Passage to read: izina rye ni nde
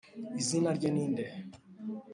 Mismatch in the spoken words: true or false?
false